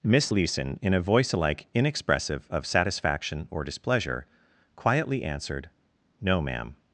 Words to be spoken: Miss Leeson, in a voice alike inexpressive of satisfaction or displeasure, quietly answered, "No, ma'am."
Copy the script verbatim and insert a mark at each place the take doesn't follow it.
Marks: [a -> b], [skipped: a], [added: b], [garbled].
Miss Leeson, in a voice alike inexpressive of satisfaction or displeasure, quietly answered, "No, ma'am."